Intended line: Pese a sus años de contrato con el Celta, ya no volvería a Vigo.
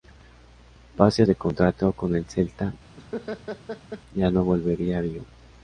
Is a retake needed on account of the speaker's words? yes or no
yes